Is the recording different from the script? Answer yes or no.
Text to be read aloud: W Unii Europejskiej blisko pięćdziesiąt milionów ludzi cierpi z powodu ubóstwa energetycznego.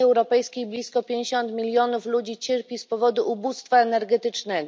yes